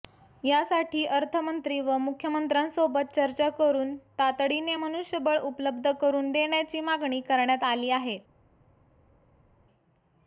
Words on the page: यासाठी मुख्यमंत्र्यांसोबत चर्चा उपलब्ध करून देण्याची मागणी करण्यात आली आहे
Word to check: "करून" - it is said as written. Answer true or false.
true